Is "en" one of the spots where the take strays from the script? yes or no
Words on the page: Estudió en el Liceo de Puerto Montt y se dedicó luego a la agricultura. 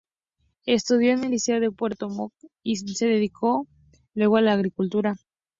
no